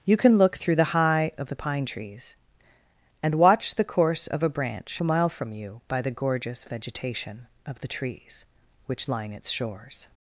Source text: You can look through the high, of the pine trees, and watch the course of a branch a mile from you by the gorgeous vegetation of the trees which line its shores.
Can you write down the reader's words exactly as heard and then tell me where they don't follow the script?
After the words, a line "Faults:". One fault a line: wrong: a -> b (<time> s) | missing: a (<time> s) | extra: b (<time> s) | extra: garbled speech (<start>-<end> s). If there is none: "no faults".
You can look through the high, of the pine trees, and watch the course of a branch a mile from you by the gorgeous vegetation of the trees which line its shores.
Faults:
no faults